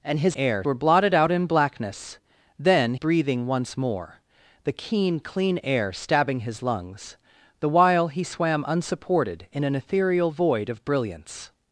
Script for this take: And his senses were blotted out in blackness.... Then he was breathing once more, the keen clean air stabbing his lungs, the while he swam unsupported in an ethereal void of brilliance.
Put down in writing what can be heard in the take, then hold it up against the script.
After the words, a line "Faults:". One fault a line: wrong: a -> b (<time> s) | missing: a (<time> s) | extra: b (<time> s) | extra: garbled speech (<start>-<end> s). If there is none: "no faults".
And his air were blotted out in blackness.... Then breathing once more, the keen clean air stabbing his lungs, the while he swam unsupported in an ethereal void of brilliance.
Faults:
wrong: senses -> air (0.4 s)
missing: he was (2.9 s)